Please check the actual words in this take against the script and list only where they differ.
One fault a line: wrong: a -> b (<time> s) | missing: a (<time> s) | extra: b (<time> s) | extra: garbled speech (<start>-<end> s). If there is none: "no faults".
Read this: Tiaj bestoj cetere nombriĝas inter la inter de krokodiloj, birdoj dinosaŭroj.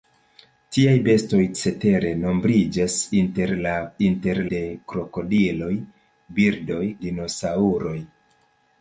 no faults